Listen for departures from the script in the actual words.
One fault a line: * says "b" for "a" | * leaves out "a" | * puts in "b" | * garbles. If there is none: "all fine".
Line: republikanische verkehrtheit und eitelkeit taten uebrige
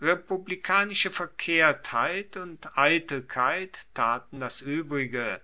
* puts in "das"